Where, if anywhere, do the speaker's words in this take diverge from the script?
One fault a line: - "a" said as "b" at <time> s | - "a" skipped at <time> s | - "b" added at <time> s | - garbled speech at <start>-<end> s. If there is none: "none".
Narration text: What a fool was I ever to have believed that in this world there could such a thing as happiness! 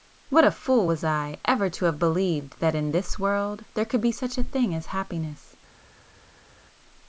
- "be" added at 4.0 s